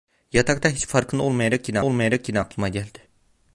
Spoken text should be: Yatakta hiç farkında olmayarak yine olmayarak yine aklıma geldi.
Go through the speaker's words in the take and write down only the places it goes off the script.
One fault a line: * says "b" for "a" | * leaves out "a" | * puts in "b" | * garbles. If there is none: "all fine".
all fine